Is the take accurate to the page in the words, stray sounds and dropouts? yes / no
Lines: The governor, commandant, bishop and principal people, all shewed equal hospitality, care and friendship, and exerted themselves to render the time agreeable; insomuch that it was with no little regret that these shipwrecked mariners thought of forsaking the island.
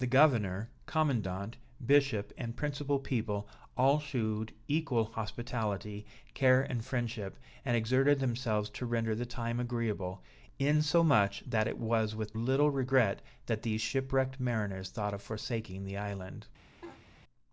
no